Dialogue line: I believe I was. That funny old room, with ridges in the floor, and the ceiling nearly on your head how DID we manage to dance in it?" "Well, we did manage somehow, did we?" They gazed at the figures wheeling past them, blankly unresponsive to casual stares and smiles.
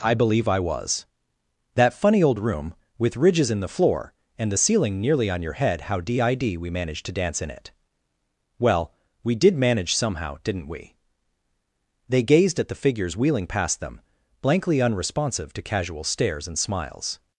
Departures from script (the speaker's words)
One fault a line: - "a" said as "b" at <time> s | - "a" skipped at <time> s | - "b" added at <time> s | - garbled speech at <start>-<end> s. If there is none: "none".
- "did" said as "didn't" at 10.4 s